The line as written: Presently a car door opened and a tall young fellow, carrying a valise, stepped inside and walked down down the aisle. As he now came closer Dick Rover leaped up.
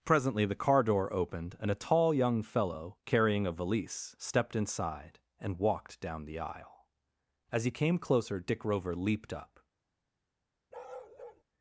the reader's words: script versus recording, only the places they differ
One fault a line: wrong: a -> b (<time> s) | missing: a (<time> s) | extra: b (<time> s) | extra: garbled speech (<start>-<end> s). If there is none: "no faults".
wrong: a -> the (0.5 s)
missing: down (6.2 s)
missing: now (7.7 s)